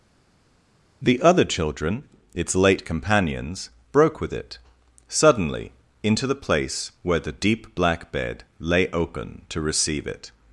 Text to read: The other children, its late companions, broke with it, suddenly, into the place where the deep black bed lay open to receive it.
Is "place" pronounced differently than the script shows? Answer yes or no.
no